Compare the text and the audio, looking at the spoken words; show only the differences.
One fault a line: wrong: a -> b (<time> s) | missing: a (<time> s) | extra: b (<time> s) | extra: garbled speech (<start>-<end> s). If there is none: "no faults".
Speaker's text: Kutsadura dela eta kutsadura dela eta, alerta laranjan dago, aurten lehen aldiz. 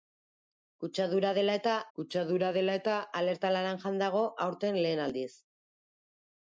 no faults